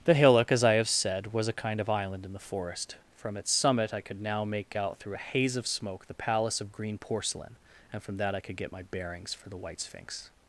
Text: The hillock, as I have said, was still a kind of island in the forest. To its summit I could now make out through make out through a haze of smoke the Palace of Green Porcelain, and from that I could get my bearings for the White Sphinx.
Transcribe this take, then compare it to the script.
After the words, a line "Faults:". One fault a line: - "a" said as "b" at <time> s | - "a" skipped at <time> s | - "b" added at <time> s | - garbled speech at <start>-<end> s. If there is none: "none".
The hillock, as I have said, was a kind of island in the forest. From its summit I could now make out through a haze of smoke the Palace of Green Porcelain, and from that I could get my bearings for the White Sphinx.
Faults:
- "still" skipped at 1.5 s
- "To" said as "From" at 3.2 s
- "make out through" skipped at 5.1 s